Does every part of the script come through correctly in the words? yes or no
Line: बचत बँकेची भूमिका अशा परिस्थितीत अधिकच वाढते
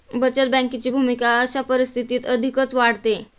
yes